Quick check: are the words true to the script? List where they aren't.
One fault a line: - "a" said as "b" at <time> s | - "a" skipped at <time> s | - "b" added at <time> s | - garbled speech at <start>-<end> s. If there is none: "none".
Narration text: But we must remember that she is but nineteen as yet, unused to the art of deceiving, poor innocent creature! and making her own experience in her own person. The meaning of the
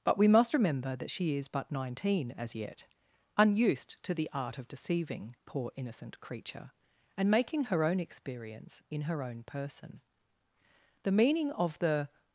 none